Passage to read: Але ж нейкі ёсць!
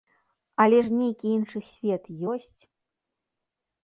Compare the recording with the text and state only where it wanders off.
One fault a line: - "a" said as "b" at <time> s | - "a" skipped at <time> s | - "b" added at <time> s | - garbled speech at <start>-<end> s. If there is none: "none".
- "іншы свет" added at 1.4 s